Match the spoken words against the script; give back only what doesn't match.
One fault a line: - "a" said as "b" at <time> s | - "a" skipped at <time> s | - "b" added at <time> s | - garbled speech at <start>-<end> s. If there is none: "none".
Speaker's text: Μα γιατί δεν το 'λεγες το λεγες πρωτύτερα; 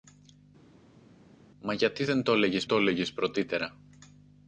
none